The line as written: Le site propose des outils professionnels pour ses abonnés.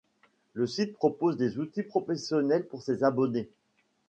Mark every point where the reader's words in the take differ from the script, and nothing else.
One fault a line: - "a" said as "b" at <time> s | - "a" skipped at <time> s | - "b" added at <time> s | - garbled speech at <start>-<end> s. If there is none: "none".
none